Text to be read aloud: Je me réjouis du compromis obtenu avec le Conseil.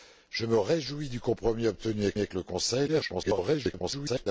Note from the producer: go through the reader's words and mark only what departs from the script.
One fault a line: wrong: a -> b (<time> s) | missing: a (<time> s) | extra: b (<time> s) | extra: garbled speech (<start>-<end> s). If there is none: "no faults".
extra: avec (2.2 s)
extra: garbled speech (2.9-4.3 s)